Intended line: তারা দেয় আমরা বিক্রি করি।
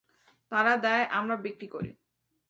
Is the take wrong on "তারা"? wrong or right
right